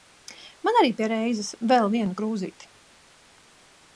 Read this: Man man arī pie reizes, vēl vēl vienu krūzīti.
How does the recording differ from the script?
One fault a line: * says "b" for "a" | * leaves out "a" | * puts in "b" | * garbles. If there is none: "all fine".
* leaves out "man"
* leaves out "vēl"